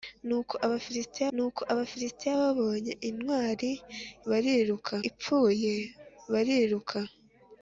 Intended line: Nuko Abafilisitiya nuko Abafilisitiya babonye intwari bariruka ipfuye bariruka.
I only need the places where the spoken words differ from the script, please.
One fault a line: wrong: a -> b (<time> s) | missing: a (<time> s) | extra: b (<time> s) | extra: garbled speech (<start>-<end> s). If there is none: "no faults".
no faults